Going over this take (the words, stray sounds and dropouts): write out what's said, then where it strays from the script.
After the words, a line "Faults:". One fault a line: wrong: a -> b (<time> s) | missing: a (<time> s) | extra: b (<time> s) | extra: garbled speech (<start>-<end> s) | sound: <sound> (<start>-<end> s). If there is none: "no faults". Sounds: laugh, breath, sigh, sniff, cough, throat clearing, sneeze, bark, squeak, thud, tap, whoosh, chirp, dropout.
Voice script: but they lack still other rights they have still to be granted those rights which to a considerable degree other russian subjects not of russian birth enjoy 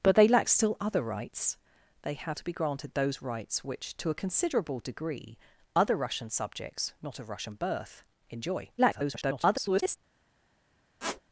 but they lack still other rights they have to be granted those rights which to a considerable degree other russian subjects not of russian birth enjoy [garbled]
Faults:
missing: still (2.4 s)
extra: garbled speech (8.8-10.0 s)
sound: squeak (11.0-11.2 s)